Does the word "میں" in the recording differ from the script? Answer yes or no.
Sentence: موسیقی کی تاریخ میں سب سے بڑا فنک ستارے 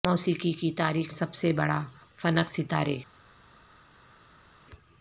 yes